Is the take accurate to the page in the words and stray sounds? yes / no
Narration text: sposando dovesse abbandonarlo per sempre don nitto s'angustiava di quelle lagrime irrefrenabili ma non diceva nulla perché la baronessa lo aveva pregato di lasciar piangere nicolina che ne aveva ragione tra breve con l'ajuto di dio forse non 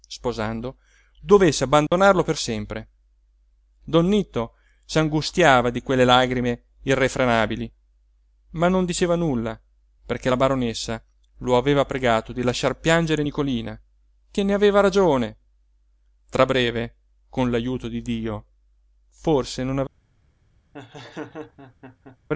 no